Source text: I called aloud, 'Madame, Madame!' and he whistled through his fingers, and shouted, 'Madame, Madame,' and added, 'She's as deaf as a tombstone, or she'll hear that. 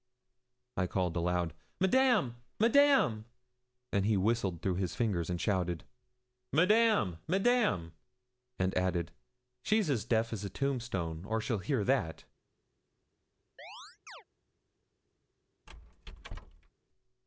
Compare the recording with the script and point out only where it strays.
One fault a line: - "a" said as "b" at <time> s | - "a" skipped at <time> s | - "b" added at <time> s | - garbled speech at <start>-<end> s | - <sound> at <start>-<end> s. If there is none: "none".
- chirp at 13.6-14.2 s
- squeak at 15.7-16.7 s